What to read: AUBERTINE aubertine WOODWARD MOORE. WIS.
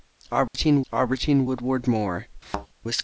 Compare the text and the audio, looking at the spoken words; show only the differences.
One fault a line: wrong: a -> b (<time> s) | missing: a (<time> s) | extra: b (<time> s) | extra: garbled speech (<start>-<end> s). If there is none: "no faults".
no faults